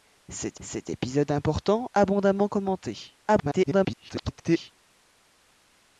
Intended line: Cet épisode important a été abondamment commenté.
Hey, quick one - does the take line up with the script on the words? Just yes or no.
no